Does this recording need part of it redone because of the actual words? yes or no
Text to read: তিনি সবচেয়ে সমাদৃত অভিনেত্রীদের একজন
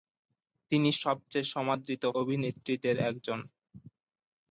no